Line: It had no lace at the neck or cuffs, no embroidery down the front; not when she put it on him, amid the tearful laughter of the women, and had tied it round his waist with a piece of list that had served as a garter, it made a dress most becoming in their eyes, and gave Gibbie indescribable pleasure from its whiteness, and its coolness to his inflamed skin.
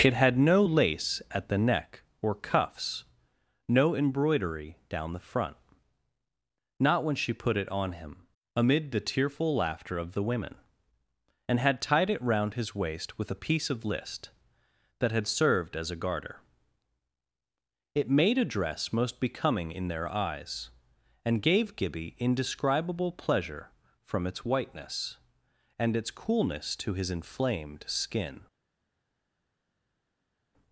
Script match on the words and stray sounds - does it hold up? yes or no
yes